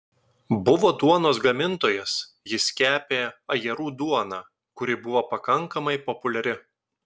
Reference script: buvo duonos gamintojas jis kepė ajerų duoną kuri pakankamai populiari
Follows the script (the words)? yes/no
no